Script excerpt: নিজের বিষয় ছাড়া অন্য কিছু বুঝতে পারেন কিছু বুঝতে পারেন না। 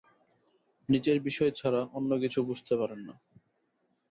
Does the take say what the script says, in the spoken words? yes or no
no